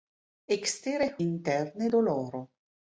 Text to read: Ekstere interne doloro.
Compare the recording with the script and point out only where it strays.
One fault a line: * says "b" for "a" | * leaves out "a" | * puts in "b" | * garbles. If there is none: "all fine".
all fine